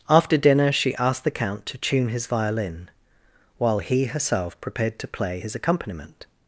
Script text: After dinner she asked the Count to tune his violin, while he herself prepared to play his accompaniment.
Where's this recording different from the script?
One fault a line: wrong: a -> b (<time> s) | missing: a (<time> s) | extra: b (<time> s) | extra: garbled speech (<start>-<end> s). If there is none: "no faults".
no faults